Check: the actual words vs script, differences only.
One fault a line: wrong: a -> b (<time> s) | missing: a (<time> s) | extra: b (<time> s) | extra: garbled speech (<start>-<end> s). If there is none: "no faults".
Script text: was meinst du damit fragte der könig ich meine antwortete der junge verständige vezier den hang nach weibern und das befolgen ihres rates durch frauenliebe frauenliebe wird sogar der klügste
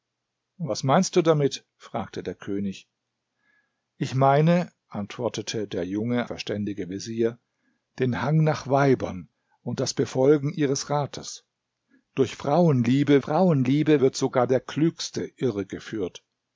no faults